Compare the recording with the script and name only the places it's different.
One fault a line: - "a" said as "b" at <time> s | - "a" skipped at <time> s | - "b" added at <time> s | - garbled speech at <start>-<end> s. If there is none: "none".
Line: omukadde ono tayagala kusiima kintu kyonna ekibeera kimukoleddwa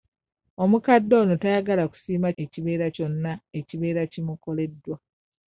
- "kintu" said as "ekibeera" at 2.4 s